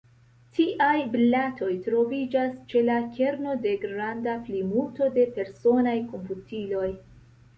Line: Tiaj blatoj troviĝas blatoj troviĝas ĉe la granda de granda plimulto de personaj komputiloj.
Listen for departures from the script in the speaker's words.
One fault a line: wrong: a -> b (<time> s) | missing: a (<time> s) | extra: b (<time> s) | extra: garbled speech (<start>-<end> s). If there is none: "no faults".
missing: blatoj troviĝas (2.5 s)
wrong: granda -> kerno (3.2 s)